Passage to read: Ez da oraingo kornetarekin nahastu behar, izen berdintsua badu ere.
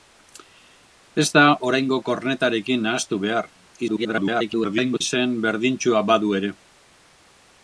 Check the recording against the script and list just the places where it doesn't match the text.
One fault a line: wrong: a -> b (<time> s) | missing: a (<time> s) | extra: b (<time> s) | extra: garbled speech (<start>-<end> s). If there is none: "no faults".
extra: garbled speech (3.9-5.0 s)